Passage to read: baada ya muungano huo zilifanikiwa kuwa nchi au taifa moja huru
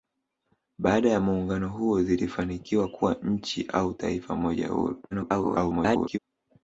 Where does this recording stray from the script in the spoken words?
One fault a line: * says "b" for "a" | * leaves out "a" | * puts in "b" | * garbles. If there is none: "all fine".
* garbles